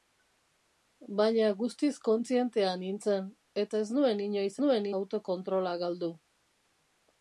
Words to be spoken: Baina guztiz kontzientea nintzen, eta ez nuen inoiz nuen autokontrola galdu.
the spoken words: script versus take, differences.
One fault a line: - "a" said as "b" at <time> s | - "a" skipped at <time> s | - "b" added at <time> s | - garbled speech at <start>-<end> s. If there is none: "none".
none